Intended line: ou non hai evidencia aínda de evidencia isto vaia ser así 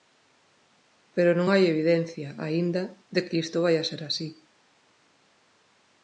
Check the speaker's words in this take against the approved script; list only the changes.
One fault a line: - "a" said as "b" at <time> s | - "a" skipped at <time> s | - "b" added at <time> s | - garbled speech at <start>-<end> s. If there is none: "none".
- "ou" said as "pero" at 1.1 s
- "evidencia" said as "que" at 3.3 s